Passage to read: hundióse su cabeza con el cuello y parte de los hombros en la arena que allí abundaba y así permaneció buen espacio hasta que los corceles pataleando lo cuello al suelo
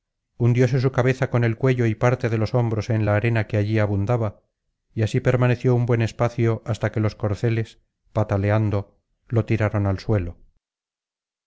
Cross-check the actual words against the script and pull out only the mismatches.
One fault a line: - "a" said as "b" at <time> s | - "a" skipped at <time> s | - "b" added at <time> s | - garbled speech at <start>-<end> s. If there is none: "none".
- "un" added at 5.7 s
- "cuello" said as "tiraron" at 9.5 s